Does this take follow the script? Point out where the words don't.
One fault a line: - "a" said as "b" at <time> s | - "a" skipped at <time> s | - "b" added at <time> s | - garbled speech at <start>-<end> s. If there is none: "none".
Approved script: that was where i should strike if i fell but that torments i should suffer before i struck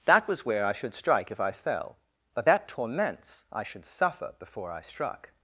none